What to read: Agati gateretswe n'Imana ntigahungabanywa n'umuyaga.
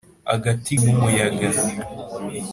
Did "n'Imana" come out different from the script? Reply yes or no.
yes